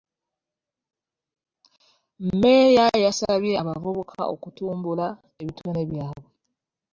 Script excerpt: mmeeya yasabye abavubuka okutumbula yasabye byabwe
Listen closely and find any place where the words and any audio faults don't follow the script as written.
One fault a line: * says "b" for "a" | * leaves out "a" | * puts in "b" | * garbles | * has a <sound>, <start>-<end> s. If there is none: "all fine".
* says "ebitone" for "yasabye"